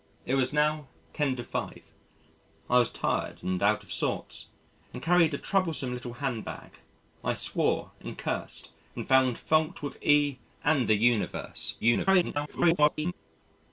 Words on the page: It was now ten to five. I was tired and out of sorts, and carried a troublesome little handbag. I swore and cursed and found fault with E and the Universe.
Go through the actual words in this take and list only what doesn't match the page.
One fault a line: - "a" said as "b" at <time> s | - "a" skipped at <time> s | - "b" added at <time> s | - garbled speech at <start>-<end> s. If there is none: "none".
- garbled speech at 11.8-13.1 s